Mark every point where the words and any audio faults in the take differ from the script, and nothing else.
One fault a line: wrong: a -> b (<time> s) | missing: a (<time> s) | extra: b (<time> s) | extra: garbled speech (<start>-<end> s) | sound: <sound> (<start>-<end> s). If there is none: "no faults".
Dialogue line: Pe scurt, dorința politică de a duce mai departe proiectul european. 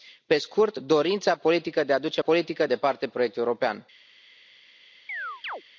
wrong: mai -> politică (2.2 s)
sound: chirp (5.1-5.6 s)